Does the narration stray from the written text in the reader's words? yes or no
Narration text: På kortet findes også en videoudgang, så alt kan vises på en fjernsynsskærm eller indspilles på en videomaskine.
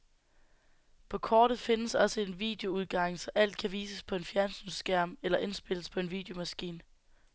no